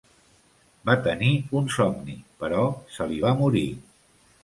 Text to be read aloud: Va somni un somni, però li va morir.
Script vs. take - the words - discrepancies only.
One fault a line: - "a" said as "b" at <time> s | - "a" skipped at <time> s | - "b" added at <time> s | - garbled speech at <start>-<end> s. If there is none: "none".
- "somni" said as "tenir" at 1.1 s
- "se" added at 3.0 s